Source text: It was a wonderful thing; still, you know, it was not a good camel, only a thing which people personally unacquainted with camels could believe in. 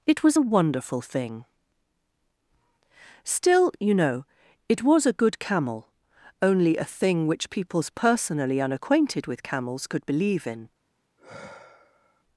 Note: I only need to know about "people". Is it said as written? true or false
false